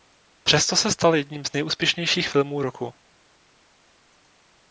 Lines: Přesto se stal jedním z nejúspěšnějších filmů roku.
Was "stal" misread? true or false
false